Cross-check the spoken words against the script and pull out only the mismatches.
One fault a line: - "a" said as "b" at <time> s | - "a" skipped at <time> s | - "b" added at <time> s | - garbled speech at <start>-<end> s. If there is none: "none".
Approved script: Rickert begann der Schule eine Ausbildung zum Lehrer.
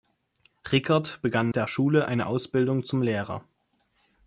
none